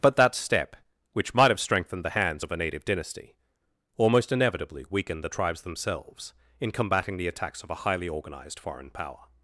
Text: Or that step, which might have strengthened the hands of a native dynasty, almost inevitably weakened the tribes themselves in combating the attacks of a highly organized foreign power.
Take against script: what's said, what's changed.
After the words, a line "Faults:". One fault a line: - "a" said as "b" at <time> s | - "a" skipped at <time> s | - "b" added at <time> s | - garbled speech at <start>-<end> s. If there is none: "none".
But that step, which might have strengthened the hands of a native dynasty, almost inevitably weakened the tribes themselves in combating the attacks of a highly organized foreign power.
Faults:
- "Or" said as "But" at 0.0 s